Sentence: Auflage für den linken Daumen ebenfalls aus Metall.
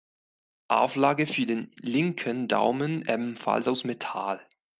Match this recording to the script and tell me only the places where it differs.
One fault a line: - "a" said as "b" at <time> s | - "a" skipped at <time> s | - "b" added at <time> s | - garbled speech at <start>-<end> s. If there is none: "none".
none